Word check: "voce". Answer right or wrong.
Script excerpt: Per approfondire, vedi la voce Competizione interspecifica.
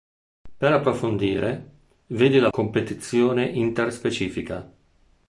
wrong